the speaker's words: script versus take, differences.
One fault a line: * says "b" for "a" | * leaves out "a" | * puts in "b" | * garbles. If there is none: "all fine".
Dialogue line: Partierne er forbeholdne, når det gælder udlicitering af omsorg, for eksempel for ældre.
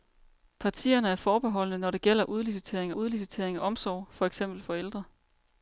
* puts in "udlicitering"